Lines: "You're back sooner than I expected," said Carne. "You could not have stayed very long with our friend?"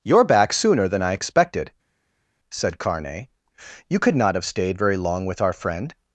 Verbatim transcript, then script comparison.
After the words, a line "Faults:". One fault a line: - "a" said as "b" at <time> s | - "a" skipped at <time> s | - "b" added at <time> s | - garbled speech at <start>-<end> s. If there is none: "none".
"You're back sooner than I expected," said Carne. "You could not have stayed very long with our friend?"
Faults:
none